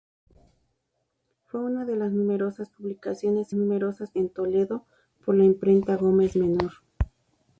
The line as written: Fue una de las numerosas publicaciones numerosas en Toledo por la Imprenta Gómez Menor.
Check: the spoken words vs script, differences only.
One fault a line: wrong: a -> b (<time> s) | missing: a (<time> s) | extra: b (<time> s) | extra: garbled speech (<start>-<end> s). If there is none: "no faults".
no faults